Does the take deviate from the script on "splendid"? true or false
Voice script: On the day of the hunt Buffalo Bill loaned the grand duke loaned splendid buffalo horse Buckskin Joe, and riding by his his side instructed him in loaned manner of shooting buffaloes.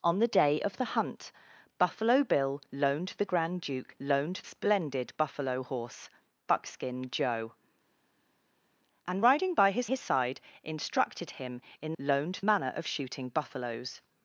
false